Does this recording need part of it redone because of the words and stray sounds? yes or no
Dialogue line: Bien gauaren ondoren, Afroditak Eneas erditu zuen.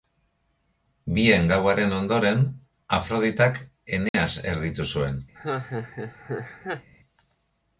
yes